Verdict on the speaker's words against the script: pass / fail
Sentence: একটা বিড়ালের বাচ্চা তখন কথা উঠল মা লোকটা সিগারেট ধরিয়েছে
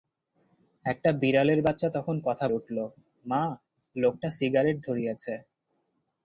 pass